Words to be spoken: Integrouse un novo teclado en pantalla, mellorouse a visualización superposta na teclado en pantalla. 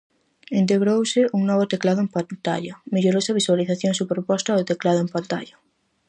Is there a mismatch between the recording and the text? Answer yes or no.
yes